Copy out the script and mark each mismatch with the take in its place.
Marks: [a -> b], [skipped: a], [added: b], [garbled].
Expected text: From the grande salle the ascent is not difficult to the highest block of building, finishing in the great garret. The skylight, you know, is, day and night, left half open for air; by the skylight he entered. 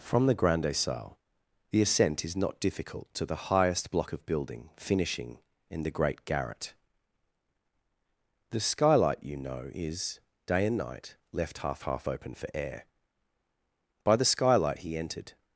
From the grande salle the ascent is not difficult to the highest block of building, finishing in the great garret. The skylight, you know, is, day and night, left half [added: half] open for air; by the skylight he entered.